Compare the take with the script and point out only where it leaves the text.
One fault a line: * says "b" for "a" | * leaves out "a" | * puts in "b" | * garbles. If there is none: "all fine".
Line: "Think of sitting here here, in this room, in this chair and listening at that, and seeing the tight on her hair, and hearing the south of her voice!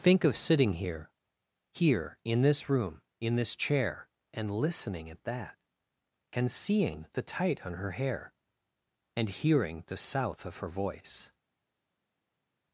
all fine